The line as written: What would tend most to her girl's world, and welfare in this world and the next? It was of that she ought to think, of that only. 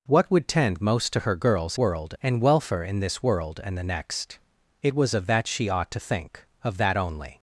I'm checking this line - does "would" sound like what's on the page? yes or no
yes